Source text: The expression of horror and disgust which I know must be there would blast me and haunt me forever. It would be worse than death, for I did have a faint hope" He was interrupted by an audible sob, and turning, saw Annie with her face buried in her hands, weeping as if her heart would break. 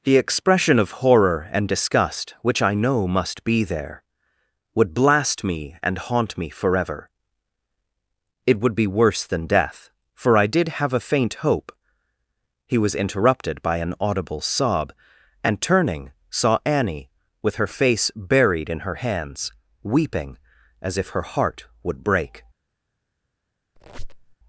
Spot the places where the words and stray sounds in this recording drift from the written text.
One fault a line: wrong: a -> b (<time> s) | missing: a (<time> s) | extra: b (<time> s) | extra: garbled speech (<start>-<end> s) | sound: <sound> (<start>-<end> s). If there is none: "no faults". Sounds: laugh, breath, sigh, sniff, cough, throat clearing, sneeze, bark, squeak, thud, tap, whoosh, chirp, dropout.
sound: squeak (23.8-24.4 s)